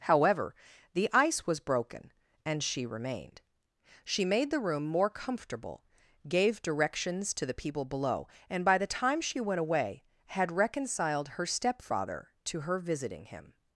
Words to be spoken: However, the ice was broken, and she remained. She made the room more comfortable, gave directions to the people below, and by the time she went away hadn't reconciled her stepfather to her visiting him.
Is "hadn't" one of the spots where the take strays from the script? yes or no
yes